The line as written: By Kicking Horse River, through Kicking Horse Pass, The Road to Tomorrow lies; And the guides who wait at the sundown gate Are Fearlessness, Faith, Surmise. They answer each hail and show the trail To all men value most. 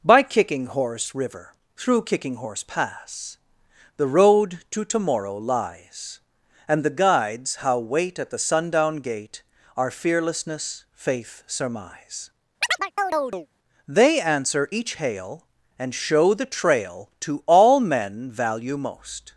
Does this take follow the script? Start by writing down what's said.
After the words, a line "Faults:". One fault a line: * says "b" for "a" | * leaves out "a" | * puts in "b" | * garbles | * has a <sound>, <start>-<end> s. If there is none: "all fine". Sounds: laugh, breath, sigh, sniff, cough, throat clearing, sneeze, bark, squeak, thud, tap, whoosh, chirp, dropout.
By Kicking Horse River, through Kicking Horse Pass, The Road to Tomorrow lies; And the guides how wait at the sundown gate Are Fearlessness, Faith, Surmise. They answer each hail and show the trail To all men value most.
Faults:
* says "how" for "who"
* has a chirp, 12.6-13.5 s